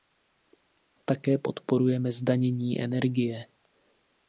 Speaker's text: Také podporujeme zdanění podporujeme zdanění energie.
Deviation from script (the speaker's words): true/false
true